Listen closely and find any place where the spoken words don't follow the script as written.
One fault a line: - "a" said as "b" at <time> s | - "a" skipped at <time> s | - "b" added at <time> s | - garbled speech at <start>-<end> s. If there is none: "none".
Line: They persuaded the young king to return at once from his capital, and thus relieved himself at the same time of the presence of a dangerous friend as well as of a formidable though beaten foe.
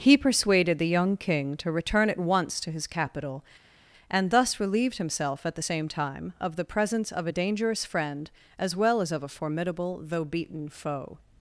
- "They" said as "He" at 0.0 s
- "from" said as "to" at 2.6 s